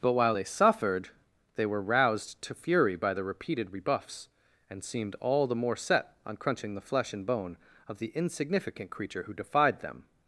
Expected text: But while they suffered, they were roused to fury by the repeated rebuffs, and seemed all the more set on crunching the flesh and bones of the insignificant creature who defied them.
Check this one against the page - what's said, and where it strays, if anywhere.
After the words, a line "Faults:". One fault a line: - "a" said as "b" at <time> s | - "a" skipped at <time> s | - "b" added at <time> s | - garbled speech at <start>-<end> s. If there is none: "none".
But while they suffered, they were roused to fury by the repeated rebuffs, and seemed all the more set on crunching the flesh and bone of the insignificant creature who defied them.
Faults:
- "bones" said as "bone" at 7.3 s